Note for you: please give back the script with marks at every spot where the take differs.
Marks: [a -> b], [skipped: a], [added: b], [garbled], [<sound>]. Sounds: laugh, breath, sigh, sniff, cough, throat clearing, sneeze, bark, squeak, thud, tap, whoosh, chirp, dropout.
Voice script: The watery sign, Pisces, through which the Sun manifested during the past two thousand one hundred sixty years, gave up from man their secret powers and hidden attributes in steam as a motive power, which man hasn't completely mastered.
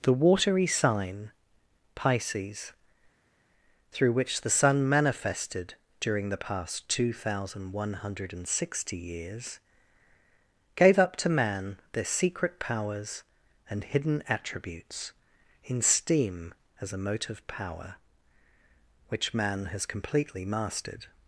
The watery sign, Pisces, through which the Sun manifested during the past two thousand one hundred sixty years, gave up [from -> to] man their secret powers and hidden attributes in steam as a motive power, which man [hasn't -> has] completely mastered.